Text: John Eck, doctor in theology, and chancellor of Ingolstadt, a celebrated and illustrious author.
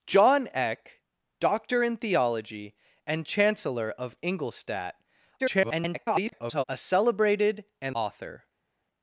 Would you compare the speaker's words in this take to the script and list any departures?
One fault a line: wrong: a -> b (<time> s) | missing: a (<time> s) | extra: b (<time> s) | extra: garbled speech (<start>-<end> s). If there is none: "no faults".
extra: garbled speech (5.4-6.6 s)
missing: illustrious (7.9 s)